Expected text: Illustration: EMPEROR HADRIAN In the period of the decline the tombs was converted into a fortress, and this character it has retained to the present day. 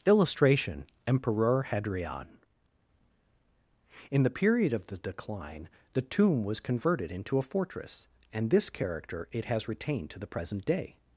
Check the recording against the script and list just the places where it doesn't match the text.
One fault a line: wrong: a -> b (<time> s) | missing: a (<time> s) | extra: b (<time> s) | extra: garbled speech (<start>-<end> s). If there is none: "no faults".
wrong: tombs -> tomb (6.0 s)